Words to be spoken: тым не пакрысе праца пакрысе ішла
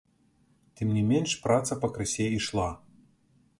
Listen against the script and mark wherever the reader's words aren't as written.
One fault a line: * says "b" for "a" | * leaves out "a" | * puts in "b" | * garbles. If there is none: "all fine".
* says "менш" for "пакрысе"